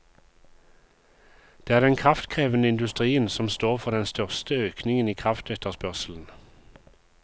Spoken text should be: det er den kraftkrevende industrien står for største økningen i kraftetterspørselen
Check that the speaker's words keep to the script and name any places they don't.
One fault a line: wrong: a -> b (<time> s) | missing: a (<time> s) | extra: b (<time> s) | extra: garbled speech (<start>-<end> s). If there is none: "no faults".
extra: som (3.3 s)
extra: den (3.9 s)